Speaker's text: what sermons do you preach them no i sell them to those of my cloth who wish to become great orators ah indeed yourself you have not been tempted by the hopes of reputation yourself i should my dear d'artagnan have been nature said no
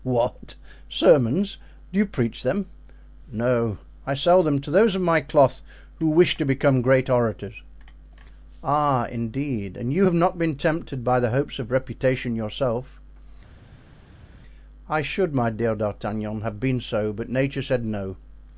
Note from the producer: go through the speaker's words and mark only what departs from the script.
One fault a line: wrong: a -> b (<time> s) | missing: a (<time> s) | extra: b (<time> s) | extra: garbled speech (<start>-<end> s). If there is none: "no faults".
wrong: yourself -> and (9.8 s)
extra: so but (16.8 s)